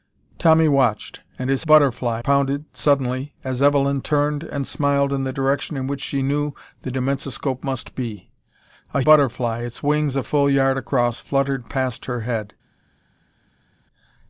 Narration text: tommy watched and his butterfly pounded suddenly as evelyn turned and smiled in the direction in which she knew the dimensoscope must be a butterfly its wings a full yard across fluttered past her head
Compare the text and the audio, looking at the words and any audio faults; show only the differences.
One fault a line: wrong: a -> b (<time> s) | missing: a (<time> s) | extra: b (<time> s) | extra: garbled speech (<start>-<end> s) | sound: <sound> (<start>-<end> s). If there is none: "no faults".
no faults